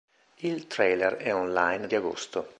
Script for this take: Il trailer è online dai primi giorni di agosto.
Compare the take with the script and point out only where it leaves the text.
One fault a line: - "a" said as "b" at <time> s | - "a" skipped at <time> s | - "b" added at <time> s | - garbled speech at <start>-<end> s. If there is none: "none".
- "dai primi giorni" skipped at 1.9 s